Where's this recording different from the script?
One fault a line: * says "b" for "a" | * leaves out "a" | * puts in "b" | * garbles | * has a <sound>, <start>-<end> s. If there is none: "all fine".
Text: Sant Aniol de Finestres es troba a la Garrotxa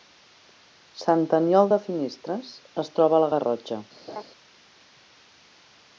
* has a laugh, 4.1-4.2 s